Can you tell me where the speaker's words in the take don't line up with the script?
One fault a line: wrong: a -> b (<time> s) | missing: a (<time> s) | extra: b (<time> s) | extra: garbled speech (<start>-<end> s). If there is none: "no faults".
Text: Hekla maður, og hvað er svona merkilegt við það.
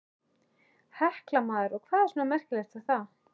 extra: við (2.8 s)